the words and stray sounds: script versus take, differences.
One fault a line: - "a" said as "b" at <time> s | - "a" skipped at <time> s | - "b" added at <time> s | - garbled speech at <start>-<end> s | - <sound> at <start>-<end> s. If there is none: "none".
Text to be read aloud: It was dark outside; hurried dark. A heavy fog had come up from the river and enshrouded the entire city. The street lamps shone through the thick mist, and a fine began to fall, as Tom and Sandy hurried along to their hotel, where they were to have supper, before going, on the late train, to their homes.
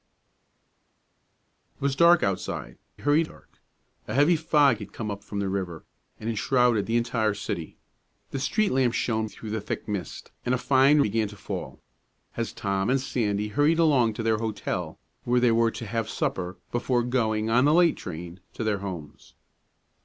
none